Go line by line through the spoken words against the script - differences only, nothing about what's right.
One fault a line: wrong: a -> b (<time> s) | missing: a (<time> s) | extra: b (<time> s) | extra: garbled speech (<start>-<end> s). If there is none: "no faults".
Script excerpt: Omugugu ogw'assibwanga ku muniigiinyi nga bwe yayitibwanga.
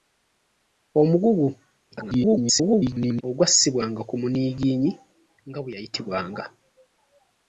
extra: garbled speech (1.9-3.2 s)